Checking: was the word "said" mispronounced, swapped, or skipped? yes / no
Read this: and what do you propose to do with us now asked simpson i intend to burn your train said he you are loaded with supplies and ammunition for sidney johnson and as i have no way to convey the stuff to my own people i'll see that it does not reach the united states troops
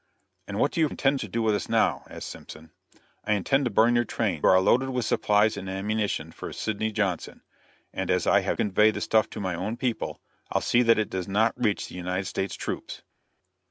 yes